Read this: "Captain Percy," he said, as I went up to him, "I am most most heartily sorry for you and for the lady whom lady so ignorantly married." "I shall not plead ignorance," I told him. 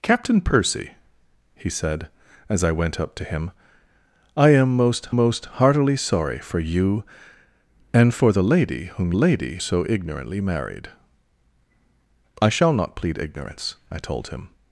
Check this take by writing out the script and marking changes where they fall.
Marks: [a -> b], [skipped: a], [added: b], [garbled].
"Captain Percy," he said, as I went up to him, "I am most most heartily sorry for you and for the lady whom lady so ignorantly married." "I shall not plead ignorance," I told him.